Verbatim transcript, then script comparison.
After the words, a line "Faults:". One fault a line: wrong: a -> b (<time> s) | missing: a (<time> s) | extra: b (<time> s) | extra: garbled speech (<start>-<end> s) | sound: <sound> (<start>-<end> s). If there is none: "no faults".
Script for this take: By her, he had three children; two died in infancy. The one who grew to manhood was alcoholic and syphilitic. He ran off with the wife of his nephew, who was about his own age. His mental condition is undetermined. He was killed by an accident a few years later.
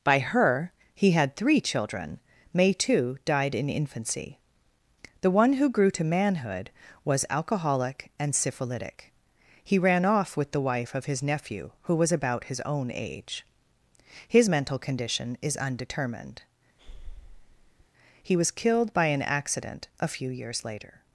By her, he had three children; may too died in infancy. The one who grew to manhood was alcoholic and syphilitic. He ran off with the wife of his nephew, who was about his own age. His mental condition is undetermined. He was killed by an accident a few years later.
Faults:
wrong: two -> may too (2.5 s)
sound: breath (16.8-17.9 s)